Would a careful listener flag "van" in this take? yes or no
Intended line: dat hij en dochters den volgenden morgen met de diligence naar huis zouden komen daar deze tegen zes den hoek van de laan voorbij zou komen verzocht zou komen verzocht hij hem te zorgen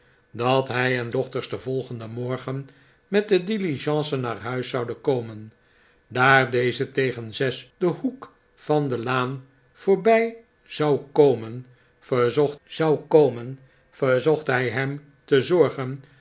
no